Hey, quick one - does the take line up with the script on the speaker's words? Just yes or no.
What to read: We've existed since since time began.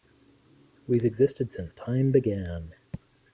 no